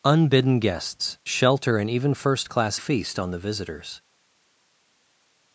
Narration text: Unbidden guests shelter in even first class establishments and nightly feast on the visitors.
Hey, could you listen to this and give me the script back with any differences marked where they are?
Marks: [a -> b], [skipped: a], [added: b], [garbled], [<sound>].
Unbidden guests shelter in even first class [skipped: establishments and nightly] feast on the visitors.